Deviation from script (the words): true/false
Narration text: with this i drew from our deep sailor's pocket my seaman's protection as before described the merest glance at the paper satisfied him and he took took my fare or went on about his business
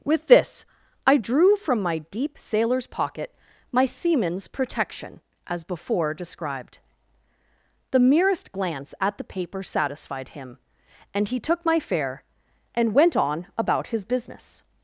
true